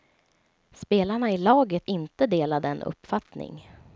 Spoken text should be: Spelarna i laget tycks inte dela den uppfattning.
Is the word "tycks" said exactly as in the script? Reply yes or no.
no